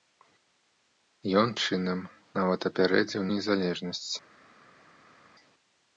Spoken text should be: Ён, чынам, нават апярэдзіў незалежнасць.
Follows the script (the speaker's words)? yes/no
yes